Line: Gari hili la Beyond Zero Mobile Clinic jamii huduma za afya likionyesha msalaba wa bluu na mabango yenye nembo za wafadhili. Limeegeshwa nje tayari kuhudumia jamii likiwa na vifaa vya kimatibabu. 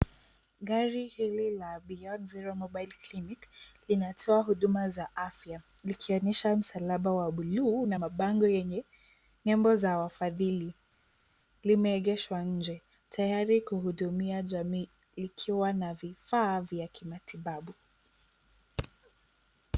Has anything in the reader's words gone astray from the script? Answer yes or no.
yes